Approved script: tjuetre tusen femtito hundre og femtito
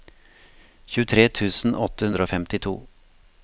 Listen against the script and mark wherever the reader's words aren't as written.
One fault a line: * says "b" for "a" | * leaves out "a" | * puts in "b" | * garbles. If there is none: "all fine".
* says "åtte" for "femtito"